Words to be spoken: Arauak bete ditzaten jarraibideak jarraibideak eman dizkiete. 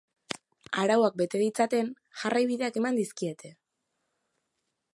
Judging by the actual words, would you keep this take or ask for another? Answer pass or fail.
fail